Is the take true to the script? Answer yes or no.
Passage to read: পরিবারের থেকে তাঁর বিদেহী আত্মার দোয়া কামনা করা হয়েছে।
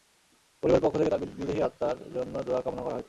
no